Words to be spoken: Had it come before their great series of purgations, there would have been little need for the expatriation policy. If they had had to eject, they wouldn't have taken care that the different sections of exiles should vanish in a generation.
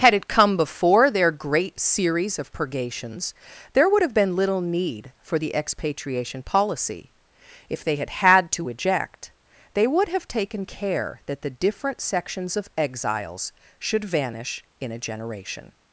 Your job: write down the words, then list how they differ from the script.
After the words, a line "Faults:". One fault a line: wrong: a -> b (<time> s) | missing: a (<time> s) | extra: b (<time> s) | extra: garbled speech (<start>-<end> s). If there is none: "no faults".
Had it come before their great series of purgations, there would have been little need for the expatriation policy. If they had had to eject, they would have taken care that the different sections of exiles should vanish in a generation.
Faults:
wrong: wouldn't -> would (9.8 s)